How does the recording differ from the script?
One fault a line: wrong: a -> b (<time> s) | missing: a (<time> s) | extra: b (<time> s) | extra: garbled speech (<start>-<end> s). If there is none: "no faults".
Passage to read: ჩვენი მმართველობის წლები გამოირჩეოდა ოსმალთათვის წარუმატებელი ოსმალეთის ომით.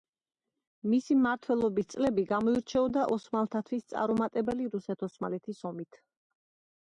wrong: ჩვენი -> მისი (0.9 s)
extra: რუსეთ (4.8 s)